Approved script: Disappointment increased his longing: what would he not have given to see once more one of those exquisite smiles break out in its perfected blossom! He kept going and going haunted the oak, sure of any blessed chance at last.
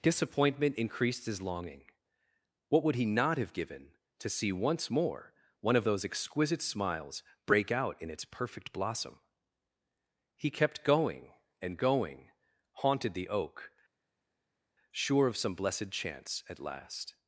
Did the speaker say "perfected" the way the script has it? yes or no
no